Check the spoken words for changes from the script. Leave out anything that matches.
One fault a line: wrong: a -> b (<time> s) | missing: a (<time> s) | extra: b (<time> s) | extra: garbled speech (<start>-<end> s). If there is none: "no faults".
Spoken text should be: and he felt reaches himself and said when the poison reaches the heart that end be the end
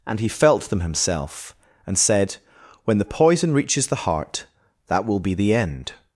wrong: reaches -> them (0.6 s)
wrong: end -> will (5.0 s)